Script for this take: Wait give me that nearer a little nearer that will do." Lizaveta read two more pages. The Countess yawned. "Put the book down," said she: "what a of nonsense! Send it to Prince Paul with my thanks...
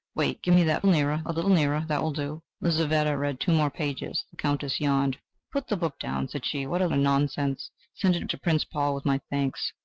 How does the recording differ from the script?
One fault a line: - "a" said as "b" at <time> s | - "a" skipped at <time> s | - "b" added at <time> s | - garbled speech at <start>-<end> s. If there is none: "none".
none